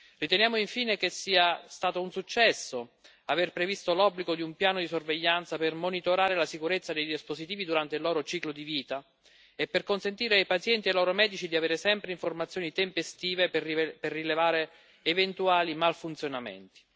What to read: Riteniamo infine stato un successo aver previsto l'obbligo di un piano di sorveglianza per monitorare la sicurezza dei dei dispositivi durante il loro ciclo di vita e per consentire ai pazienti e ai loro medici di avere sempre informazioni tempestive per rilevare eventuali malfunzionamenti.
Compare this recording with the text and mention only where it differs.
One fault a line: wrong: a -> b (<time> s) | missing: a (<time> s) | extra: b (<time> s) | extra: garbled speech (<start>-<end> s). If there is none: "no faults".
extra: che sia (1.0 s)
missing: dei (7.1 s)